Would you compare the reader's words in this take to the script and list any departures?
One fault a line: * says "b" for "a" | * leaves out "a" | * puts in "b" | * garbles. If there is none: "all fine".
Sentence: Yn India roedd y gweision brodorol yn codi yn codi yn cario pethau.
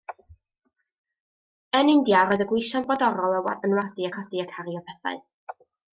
all fine